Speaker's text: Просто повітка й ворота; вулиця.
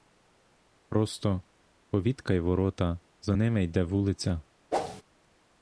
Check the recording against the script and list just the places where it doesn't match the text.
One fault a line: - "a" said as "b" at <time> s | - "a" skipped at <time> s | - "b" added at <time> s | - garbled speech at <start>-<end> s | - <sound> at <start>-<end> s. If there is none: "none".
- "за ними йде" added at 3.2 s
- whoosh at 4.7-5.0 s